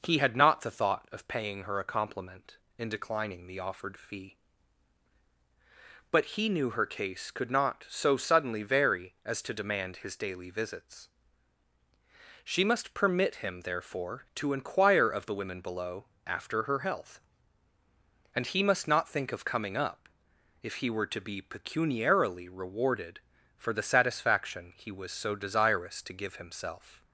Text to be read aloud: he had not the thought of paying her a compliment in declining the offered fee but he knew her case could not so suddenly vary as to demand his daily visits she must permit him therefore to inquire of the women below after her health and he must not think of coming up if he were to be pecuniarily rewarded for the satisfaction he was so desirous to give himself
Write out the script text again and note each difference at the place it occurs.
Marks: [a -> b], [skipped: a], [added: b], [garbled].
he had not the thought of paying her a compliment in declining the offered fee but he knew her case could not so suddenly vary as to demand his daily visits she must permit him therefore to inquire of the women below after her health and he must not think of coming up if he were to be pecuniarily rewarded for the satisfaction he was so desirous to give himself